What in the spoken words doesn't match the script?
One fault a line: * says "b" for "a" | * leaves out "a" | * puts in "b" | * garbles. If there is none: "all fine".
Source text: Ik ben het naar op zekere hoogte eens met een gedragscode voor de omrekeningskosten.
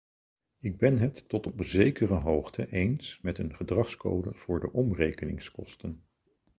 * says "tot" for "naar"